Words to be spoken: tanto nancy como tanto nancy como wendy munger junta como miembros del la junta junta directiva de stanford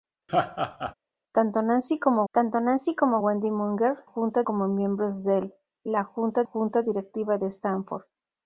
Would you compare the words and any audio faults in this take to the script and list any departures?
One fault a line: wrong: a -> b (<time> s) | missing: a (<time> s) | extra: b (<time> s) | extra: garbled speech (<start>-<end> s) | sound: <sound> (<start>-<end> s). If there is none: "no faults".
sound: laugh (0.3-0.9 s)